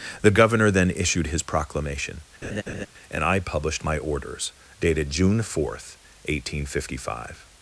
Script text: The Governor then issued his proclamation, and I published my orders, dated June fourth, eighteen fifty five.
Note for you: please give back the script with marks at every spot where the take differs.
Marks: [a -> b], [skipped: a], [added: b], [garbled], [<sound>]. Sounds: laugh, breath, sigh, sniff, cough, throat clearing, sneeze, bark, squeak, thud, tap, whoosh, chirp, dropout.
The Governor then issued his proclamation, [laugh] and I published my orders, dated June fourth, eighteen fifty five.